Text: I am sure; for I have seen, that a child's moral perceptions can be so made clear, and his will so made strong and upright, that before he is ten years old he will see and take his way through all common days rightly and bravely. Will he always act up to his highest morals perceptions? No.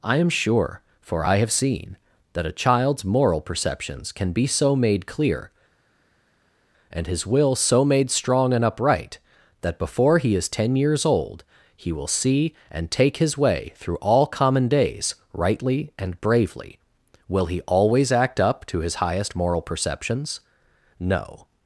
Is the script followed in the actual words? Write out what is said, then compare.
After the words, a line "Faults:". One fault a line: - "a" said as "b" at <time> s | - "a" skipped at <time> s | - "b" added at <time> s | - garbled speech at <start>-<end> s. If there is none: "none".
I am sure; for I have seen, that a child's moral perceptions can be so made clear, and his will so made strong and upright, that before he is ten years old he will see and take his way through all common days rightly and bravely. Will he always act up to his highest moral perceptions? No.
Faults:
- "morals" said as "moral" at 19.4 s